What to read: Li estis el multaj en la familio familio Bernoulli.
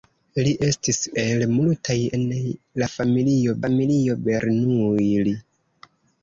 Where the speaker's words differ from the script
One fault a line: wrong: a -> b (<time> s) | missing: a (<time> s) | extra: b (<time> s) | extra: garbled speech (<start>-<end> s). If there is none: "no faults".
no faults